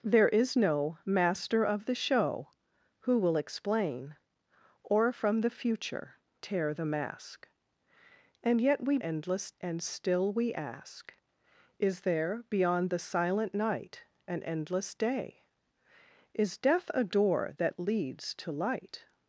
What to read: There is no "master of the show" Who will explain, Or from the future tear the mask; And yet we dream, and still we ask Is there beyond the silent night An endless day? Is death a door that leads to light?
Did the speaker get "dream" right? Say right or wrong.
wrong